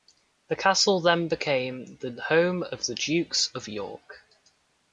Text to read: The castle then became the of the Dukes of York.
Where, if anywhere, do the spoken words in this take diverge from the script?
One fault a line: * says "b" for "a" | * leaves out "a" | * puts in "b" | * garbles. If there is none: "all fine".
* puts in "home"